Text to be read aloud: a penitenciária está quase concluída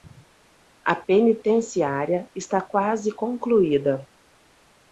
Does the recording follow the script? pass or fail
pass